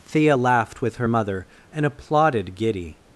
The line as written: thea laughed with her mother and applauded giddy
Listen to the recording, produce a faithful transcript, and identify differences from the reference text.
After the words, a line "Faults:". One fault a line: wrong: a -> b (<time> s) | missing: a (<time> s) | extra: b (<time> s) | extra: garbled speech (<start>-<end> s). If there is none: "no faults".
thea laughed with her mother and applauded giddy
Faults:
no faults